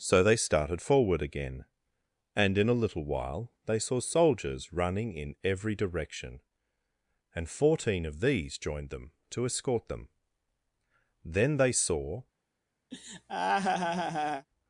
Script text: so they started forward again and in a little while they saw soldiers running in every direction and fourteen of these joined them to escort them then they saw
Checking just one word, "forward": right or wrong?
right